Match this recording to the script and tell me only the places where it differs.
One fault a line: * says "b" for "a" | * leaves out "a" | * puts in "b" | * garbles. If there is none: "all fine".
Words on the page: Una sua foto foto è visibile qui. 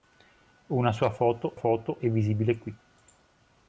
all fine